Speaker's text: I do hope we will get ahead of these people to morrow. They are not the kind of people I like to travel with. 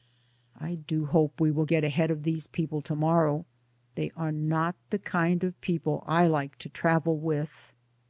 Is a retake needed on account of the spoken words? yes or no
no